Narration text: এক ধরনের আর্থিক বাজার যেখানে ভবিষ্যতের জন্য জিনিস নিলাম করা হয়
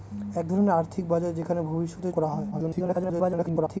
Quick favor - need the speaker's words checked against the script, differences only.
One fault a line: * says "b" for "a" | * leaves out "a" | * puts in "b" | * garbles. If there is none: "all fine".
* leaves out "জন্য জিনিস নিলাম"
* garbles